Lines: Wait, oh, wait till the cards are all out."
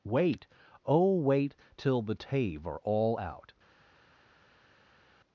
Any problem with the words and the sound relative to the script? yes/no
yes